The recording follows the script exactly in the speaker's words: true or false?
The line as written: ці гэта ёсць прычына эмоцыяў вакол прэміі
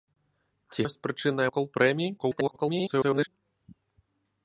false